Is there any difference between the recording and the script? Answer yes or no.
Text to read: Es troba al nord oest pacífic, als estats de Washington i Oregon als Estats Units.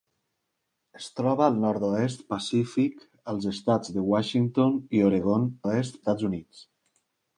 yes